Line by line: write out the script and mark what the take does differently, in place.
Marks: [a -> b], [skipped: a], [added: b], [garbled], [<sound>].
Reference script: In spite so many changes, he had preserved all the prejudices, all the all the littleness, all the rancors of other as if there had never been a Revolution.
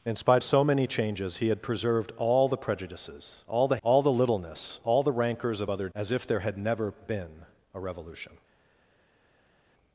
In spite so many changes, he had preserved all the prejudices, all the all the littleness, all the rancors of other as if there had never been a Revolution.